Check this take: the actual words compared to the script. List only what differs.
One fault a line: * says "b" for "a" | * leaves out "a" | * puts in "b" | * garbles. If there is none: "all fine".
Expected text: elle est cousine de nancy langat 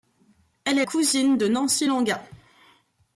all fine